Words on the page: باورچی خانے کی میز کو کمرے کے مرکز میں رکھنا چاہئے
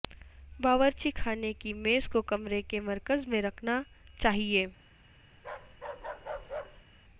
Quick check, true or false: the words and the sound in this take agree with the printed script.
false